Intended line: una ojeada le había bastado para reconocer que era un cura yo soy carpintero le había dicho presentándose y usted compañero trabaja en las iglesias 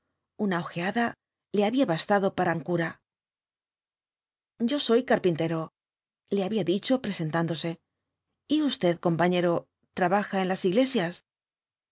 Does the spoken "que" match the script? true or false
false